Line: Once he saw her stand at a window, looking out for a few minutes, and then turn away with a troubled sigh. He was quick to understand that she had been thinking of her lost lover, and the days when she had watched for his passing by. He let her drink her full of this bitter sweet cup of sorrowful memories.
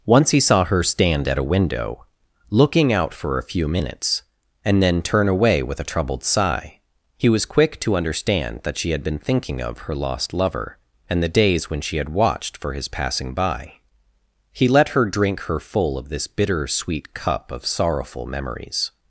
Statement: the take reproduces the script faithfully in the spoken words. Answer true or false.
true